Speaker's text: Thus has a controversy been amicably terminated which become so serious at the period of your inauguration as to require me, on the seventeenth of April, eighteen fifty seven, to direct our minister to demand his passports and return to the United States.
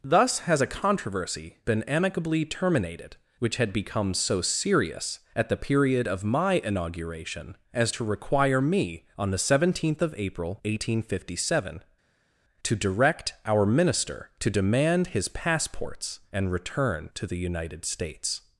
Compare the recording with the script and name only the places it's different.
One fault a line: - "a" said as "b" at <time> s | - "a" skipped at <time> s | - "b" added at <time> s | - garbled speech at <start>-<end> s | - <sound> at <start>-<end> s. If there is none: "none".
- "had" added at 3.6 s
- "your" said as "my" at 6.2 s